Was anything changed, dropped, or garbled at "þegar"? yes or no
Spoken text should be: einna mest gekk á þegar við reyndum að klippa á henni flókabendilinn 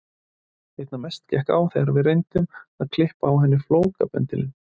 no